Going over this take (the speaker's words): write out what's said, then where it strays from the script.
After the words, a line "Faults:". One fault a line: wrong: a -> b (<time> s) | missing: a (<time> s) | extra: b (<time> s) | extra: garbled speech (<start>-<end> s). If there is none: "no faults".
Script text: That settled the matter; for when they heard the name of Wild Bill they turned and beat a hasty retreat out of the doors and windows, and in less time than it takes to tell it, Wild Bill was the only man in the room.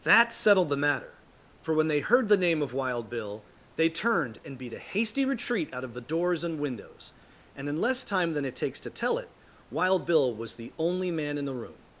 That settled the matter; for when they heard the name of Wild Bill they turned and beat a hasty retreat out of the doors and windows, and in less time than it takes to tell it, Wild Bill was the only man in the room.
Faults:
no faults